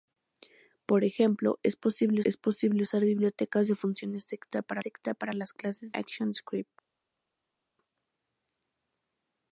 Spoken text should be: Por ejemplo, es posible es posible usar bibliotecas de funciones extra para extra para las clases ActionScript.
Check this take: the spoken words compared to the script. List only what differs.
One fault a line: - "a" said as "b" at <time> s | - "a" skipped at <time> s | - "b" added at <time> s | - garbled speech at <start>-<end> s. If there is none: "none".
none